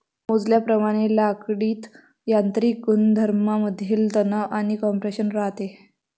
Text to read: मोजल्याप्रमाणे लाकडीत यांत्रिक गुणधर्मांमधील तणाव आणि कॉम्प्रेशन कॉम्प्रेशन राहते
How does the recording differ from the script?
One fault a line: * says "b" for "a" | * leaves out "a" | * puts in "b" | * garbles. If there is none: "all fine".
* leaves out "कॉम्प्रेशन"